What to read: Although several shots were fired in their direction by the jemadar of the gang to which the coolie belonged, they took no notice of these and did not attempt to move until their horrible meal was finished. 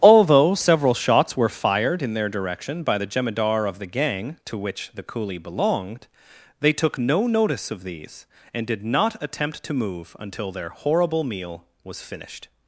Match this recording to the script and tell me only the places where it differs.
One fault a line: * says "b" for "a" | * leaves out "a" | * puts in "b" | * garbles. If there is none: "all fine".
all fine